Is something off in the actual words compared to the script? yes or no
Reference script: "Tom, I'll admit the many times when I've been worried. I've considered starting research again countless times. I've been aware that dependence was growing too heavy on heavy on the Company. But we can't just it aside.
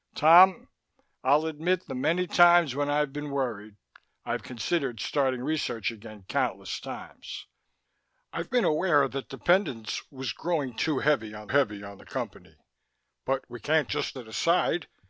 no